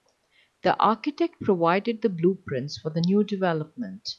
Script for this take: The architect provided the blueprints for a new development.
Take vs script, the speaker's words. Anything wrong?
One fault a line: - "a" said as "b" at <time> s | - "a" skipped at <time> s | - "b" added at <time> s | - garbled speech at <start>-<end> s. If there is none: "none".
- "a" said as "the" at 2.9 s